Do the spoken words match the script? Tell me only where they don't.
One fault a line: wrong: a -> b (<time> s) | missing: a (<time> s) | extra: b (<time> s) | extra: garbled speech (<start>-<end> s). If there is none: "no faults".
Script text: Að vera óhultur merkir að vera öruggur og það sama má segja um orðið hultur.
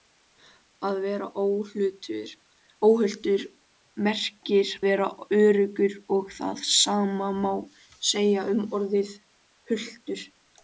missing: að (4.7 s)